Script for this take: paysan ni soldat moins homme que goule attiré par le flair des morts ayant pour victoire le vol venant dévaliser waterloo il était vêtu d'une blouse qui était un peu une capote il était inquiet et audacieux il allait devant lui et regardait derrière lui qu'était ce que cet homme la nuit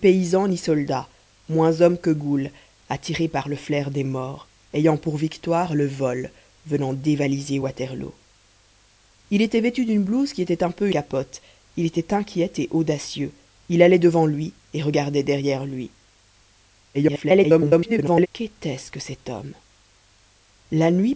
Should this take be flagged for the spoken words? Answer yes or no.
yes